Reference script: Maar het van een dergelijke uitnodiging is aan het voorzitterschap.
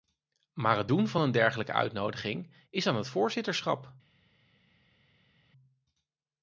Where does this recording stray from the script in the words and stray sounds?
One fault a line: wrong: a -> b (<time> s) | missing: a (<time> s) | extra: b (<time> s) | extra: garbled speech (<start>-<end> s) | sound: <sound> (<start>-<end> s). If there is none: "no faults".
extra: doen (0.9 s)